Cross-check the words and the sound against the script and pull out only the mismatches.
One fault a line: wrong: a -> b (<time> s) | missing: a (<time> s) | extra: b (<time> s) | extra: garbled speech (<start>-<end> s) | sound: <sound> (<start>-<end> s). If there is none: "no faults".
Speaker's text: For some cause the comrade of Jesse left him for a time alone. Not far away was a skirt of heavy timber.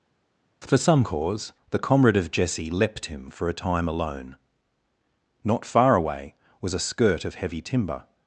wrong: left -> leapt (2.7 s)